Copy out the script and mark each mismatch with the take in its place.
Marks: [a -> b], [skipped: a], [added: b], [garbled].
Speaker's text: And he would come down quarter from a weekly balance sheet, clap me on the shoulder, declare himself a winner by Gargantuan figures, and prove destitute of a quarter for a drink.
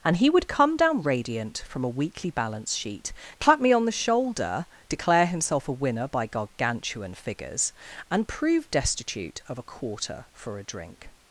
And he would come down [quarter -> radiant] from a weekly balance sheet, clap me on the shoulder, declare himself a winner by Gargantuan figures, and prove destitute of a quarter for a drink.